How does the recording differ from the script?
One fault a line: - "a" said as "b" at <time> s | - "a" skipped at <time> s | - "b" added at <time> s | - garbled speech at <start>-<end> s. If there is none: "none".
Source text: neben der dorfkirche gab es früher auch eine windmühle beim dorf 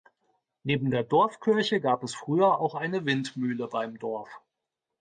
none